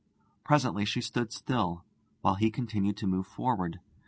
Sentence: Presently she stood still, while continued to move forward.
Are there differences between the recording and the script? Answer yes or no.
yes